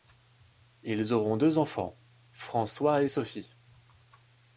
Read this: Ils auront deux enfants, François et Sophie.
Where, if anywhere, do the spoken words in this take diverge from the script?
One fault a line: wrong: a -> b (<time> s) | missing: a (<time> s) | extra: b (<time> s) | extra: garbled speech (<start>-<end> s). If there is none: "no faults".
no faults